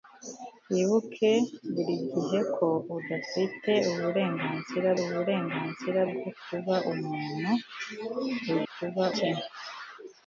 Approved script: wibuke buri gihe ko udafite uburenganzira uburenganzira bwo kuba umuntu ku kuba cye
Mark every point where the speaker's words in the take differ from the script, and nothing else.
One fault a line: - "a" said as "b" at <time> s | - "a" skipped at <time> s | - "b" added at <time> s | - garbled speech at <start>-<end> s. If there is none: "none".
none